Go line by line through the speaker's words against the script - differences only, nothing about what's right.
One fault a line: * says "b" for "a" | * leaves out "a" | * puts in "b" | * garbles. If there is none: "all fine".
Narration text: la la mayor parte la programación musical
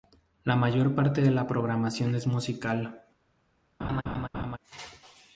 * leaves out "la"
* puts in "de"
* puts in "es"